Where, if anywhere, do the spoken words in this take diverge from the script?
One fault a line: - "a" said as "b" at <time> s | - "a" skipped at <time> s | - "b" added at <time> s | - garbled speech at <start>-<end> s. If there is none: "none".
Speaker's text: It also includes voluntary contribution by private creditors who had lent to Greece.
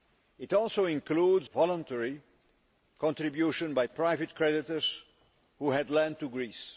none